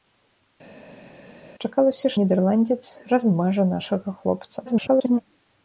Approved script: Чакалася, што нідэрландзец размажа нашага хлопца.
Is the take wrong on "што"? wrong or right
wrong